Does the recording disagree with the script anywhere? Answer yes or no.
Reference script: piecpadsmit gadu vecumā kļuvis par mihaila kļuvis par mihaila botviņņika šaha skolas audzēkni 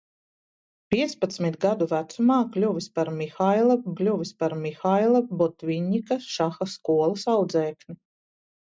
no